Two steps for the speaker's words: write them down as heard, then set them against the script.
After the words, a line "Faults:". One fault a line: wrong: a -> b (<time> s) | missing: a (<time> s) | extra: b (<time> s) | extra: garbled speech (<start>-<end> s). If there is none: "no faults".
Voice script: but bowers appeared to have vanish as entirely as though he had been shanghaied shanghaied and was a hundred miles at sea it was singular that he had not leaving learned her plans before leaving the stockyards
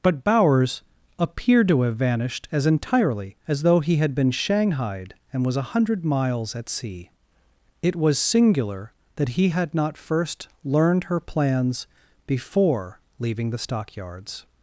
but bowers appeared to have vanished as entirely as though he had been shanghaied and was a hundred miles at sea it was singular that he had not first learned her plans before leaving the stockyards
Faults:
wrong: vanish -> vanished (2.0 s)
missing: shanghaied (5.1 s)
wrong: leaving -> first (10.0 s)